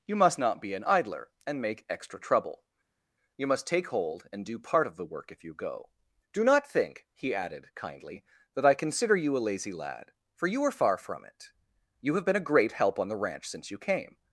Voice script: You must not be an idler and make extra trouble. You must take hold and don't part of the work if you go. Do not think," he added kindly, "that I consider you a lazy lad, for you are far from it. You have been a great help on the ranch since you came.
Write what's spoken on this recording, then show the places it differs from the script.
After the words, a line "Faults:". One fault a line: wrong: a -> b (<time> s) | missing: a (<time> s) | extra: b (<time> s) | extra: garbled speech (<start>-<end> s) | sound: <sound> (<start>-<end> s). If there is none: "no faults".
You must not be an idler and make extra trouble. You must take hold and do part of the work if you go. Do not think," he added kindly, "that I consider you a lazy lad, for you are far from it. You have been a great help on the ranch since you came.
Faults:
wrong: don't -> do (4.4 s)